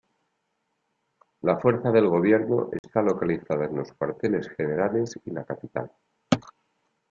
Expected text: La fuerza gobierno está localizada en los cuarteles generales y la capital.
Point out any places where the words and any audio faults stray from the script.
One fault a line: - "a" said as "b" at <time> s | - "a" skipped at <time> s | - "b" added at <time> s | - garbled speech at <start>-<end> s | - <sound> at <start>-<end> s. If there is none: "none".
- "del" added at 1.9 s
- dropout at 2.8-2.8 s